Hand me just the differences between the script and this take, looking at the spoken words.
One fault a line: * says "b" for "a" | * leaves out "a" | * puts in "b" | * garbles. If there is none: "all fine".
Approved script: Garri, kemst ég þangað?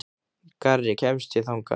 all fine